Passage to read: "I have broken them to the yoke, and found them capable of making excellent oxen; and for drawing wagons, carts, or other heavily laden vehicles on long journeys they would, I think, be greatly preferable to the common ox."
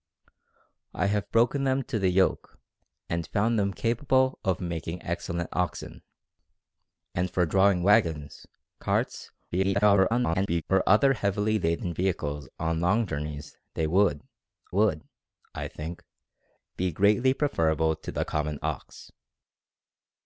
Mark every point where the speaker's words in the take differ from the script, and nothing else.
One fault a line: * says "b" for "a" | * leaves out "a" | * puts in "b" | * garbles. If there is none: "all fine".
* garbles
* puts in "would"